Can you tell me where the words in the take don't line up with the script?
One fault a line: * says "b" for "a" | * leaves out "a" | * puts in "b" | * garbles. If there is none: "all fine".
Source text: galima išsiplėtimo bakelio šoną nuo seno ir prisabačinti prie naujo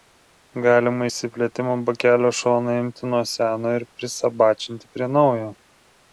* puts in "imti"